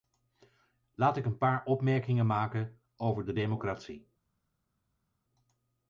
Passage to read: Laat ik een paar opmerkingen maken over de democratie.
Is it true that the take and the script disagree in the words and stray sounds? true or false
false